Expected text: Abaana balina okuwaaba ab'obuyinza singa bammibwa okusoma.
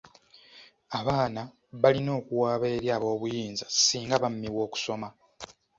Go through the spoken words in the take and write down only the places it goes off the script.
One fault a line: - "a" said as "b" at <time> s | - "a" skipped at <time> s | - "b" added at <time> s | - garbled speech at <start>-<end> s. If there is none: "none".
- "eri" added at 2.8 s